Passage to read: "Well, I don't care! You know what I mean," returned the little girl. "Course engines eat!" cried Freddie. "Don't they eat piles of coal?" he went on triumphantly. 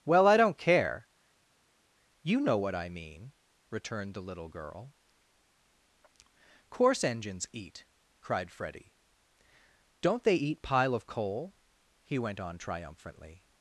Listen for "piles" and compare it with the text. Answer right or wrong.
wrong